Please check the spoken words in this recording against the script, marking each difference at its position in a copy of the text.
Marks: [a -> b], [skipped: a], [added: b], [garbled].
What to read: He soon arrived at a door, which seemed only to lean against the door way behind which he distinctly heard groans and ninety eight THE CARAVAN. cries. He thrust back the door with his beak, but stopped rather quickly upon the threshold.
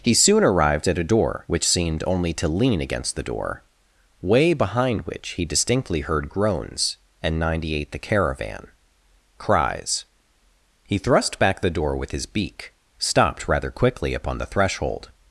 He soon arrived at a door, which seemed only to lean against the door way behind which he distinctly heard groans and ninety eight THE CARAVAN. cries. He thrust back the door with his beak, [skipped: but] stopped rather quickly upon the threshold.